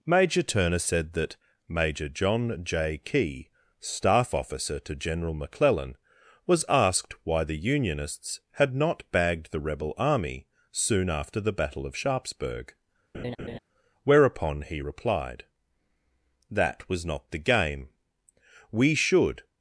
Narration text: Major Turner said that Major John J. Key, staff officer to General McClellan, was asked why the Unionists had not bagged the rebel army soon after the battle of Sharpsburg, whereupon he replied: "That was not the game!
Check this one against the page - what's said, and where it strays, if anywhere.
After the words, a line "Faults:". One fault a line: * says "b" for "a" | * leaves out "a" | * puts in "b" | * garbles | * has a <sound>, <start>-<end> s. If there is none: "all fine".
Major Turner said that Major John J. Key, staff officer to General McClellan, was asked why the Unionists had not bagged the rebel army soon after the battle of Sharpsburg, whereupon he replied: "That was not the game! We should
Faults:
* has a laugh, 13.1-13.6 s
* puts in "We should"